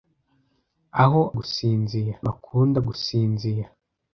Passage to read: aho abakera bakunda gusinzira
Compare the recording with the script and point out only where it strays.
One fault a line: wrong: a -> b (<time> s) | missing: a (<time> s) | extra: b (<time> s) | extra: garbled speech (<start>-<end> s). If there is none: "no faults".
wrong: abakera -> gusinzira (1.4 s)